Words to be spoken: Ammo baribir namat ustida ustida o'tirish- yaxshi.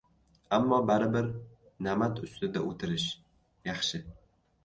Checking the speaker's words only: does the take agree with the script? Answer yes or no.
no